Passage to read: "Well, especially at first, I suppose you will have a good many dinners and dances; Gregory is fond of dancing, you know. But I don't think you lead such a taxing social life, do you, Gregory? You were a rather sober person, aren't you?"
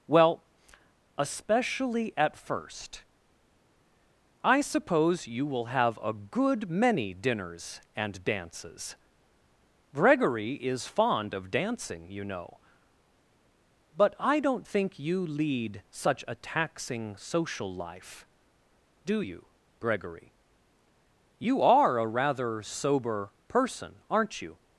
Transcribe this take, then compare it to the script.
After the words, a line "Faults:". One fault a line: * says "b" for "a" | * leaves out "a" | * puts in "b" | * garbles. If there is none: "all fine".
"Well, especially at first, I suppose you will have a good many dinners and dances; Gregory is fond of dancing, you know. But I don't think you lead such a taxing social life, do you, Gregory? You are a rather sober person, aren't you?"
Faults:
* says "are" for "were"